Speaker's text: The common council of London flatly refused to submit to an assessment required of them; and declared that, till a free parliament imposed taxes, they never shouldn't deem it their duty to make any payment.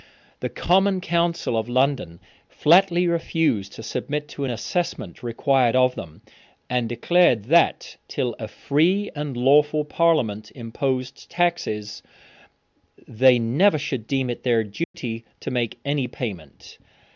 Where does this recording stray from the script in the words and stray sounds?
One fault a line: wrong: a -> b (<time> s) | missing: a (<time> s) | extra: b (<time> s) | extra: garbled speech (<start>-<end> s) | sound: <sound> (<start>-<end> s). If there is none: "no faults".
extra: and lawful (9.2 s)
wrong: shouldn't -> should (13.8 s)
sound: dropout (14.8-14.9 s)